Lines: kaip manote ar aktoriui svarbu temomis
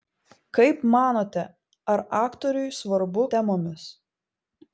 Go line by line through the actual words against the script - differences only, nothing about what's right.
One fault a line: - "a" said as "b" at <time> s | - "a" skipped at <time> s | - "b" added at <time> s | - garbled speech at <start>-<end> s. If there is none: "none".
none